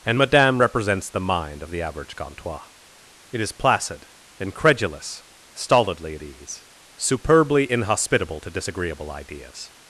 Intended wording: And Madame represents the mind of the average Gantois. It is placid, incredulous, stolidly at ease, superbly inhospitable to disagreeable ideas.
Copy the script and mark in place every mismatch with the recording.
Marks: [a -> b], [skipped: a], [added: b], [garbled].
And Madame represents the mind of the average Gantois. It is placid, incredulous, stolidly at ease, superbly inhospitable to disagreeable ideas.